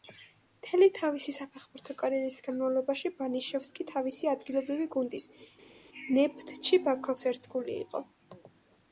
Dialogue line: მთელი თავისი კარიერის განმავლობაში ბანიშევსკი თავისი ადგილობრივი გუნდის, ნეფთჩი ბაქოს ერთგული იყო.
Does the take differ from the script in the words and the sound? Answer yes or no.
yes